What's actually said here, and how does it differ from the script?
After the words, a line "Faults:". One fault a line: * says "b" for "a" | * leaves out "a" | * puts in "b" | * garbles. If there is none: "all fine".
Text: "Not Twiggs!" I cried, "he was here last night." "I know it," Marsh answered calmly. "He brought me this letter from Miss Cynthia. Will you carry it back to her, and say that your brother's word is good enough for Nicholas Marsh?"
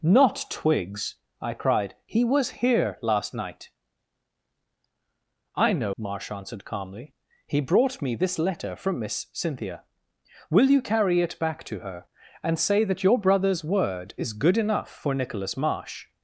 "Not Twiggs!" I cried, "he was here last night." "I know," Marsh answered calmly. "He brought me this letter from Miss Cynthia. Will you carry it back to her, and say that your brother's word is good enough for Nicholas Marsh?"
Faults:
* leaves out "it"